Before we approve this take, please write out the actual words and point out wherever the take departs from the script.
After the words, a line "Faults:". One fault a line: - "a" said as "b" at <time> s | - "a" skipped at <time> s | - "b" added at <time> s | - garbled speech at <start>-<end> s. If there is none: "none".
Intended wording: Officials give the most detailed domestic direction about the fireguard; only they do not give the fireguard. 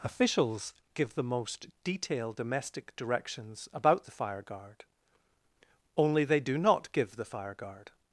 Officials give the most detailed domestic directions about the fireguard; only they do not give the fireguard.
Faults:
- "direction" said as "directions" at 2.9 s